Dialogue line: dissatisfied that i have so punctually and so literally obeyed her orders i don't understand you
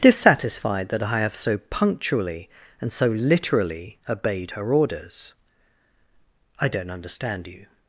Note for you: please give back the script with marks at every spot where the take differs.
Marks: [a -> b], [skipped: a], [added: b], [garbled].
dissatisfied that i have so punctually and so literally obeyed her orders i don't understand you